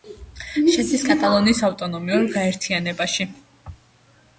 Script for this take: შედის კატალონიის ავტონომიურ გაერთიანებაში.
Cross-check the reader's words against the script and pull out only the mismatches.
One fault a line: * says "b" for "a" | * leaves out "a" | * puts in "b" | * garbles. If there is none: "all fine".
all fine